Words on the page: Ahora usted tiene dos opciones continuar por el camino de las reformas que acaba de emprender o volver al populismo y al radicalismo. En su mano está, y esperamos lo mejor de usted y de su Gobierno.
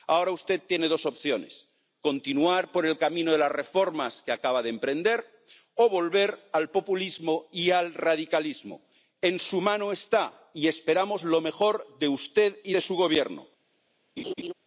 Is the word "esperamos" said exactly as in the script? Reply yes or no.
yes